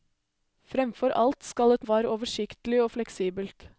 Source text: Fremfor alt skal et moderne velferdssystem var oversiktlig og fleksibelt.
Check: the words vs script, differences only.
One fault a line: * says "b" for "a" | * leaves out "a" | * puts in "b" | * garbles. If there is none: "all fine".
* leaves out "moderne velferdssystem"